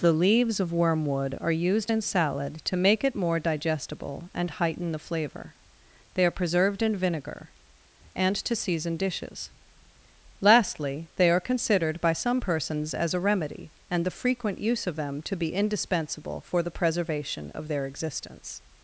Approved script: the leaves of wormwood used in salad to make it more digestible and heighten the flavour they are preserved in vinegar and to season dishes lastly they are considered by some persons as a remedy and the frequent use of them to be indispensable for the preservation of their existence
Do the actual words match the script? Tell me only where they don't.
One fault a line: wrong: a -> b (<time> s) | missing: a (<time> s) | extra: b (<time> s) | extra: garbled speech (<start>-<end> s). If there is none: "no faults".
extra: are (1.4 s)